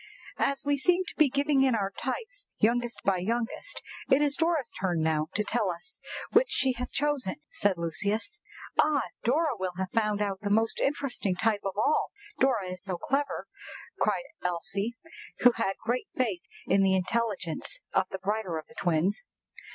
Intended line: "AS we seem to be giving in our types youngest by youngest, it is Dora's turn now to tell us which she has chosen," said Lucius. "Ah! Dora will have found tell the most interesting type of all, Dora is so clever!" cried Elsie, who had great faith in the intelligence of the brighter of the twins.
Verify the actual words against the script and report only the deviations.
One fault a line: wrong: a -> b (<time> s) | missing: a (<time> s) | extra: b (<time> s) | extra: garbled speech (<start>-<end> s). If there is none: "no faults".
wrong: tell -> out (10.2 s)